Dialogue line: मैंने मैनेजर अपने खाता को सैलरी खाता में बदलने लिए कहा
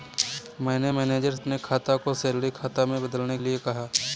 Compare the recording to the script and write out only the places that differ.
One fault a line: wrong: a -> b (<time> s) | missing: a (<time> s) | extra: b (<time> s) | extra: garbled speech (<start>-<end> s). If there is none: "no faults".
no faults